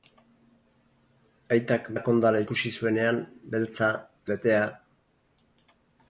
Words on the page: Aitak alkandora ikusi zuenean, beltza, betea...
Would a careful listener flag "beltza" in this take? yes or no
no